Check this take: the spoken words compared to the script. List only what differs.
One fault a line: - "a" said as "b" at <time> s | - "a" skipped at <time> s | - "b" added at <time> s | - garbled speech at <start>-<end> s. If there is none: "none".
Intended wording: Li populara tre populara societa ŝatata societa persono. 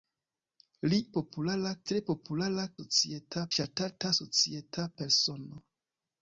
none